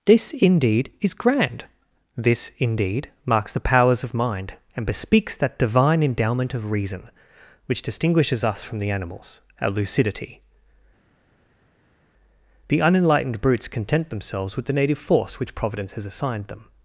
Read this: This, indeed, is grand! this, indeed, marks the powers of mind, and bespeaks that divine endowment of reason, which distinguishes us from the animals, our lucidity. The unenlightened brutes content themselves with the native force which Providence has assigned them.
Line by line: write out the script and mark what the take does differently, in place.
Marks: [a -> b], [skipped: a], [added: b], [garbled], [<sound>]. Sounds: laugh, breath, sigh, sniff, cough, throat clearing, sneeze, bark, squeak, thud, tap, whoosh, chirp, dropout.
This, indeed, is grand! this, indeed, marks the powers of mind, and bespeaks that divine endowment of reason, which distinguishes us from the animals, our lucidity. The unenlightened brutes content themselves with the native force which Providence has assigned them.